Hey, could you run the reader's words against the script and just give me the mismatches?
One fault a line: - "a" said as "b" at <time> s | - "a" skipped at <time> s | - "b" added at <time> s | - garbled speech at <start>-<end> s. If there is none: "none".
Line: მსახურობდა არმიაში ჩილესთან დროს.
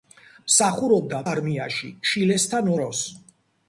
none